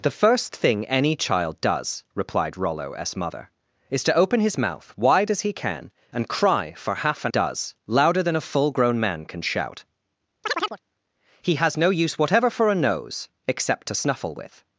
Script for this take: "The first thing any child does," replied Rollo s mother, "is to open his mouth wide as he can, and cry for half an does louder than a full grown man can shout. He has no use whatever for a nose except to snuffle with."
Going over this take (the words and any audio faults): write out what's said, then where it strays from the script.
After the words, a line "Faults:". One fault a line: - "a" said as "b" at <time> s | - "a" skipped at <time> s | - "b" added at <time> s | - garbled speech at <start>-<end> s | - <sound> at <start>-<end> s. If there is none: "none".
"The first thing any child does," replied Rollo s mother, "is to open his mouth wide as he can, and cry for half an does louder than a full grown man can shout. He has no use whatever for a nose except to snuffle with."
Faults:
- chirp at 10.4-10.8 s